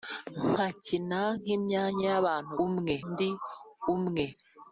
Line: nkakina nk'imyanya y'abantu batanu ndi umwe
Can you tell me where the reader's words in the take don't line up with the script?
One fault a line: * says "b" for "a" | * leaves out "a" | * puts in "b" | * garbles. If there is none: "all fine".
* says "umwe" for "batanu"